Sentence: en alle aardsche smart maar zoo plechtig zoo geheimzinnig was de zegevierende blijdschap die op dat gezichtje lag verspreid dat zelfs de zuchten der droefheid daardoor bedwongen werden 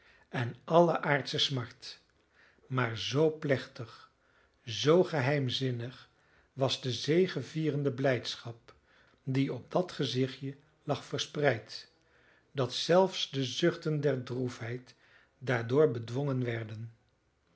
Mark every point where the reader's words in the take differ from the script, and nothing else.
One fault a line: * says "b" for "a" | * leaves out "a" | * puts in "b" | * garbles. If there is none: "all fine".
all fine